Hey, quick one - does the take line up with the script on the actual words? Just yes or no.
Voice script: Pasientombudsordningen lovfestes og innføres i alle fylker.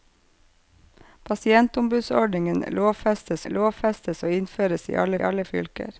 no